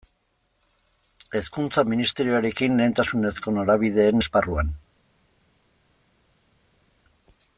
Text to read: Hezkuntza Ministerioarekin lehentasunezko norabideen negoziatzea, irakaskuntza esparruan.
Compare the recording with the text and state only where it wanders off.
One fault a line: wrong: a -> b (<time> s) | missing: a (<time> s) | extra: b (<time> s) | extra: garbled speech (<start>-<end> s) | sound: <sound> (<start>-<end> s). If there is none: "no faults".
missing: negoziatzea irakaskuntza (4.2 s)